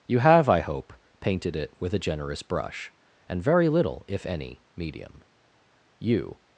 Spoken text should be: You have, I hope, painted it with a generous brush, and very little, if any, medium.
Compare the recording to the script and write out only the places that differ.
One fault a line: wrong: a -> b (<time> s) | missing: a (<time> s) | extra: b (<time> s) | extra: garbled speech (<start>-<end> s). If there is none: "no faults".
extra: You (6.0 s)